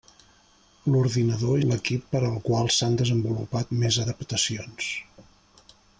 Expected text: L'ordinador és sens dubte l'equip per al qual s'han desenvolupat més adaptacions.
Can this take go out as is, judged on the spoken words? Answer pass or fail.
fail